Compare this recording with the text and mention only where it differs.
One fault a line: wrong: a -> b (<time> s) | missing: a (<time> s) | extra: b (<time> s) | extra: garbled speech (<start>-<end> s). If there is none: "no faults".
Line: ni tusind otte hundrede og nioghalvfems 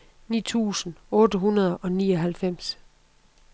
no faults